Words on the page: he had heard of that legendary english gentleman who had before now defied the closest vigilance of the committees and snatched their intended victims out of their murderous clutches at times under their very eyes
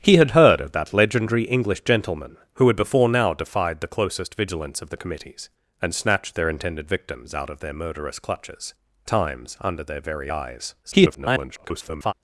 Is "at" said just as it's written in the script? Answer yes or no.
no